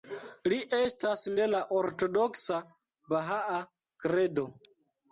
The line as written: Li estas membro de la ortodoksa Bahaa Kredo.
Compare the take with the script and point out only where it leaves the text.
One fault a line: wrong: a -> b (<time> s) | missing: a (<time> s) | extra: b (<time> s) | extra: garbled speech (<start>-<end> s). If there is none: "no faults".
missing: membro (1.2 s)